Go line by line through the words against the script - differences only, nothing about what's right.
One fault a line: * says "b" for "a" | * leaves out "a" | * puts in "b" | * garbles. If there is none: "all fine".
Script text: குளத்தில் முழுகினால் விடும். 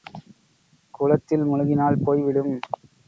* puts in "போய்"